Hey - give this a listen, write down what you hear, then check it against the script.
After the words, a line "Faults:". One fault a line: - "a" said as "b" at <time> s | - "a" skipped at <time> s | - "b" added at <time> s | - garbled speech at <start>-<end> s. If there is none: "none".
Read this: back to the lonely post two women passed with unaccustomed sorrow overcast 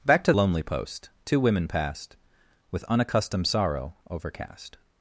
back to lonely post two women passed with unaccustomed sorrow overcast
Faults:
- "the" skipped at 0.3 s